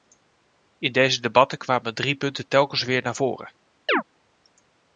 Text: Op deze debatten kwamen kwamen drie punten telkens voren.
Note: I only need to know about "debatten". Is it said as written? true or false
true